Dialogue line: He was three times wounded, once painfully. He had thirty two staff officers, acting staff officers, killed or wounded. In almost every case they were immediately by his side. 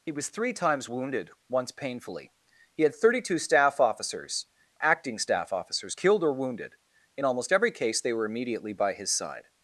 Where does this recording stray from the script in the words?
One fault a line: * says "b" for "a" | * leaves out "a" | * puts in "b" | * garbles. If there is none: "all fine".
all fine